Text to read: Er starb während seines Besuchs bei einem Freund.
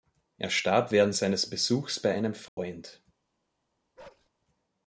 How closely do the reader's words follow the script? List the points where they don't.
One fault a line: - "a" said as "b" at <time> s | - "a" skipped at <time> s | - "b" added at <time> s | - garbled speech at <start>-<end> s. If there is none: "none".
none